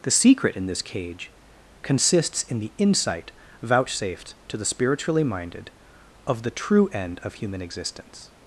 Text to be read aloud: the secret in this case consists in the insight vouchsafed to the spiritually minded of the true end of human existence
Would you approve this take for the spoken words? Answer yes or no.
no